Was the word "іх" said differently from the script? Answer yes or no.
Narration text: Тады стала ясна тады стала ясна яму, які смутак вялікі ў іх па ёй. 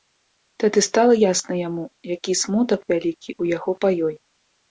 yes